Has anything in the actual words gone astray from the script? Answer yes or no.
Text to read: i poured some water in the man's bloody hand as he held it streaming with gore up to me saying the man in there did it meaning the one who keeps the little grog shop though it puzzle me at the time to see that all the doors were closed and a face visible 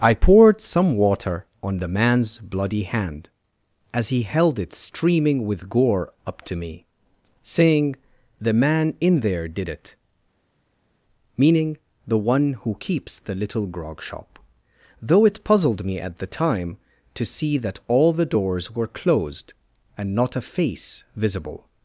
yes